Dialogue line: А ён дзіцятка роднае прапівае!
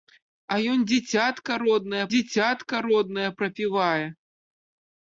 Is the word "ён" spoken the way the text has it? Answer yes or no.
yes